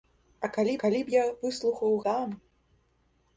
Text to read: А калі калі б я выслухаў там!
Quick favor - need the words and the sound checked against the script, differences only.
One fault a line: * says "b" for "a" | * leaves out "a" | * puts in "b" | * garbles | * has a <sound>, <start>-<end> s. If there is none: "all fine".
all fine